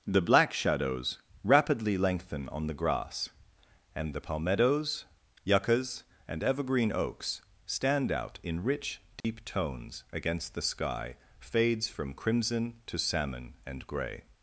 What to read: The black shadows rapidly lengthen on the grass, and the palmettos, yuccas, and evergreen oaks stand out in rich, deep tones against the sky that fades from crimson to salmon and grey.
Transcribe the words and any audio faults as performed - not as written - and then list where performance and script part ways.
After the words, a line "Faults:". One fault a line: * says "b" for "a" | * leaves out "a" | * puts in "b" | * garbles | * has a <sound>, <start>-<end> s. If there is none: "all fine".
The black shadows rapidly lengthen on the grass, and the palmettos, yuccas, and evergreen oaks stand out in rich, deep tones against the sky fades from crimson to salmon and grey.
Faults:
* has a dropout, 9.2-9.2 s
* leaves out "that"